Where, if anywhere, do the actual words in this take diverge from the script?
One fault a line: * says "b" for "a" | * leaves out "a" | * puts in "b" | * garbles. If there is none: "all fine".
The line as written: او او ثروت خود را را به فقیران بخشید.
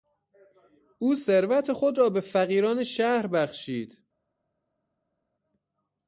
* leaves out "او"
* leaves out "را"
* puts in "شهر"